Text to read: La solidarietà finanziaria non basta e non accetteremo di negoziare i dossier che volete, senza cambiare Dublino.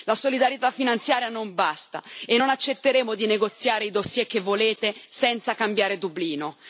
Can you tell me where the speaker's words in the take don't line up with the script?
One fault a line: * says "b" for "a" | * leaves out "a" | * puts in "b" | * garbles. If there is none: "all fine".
all fine